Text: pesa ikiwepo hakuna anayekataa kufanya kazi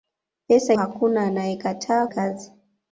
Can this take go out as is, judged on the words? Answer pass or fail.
fail